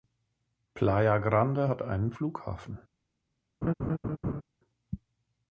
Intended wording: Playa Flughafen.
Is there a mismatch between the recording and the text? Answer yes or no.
yes